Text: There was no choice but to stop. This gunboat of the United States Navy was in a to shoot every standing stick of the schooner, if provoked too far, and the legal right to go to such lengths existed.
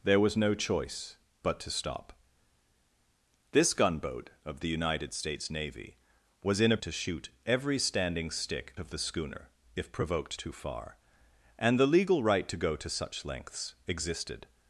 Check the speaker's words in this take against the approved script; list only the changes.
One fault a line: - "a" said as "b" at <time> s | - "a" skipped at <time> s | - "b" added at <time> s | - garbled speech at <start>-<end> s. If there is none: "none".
none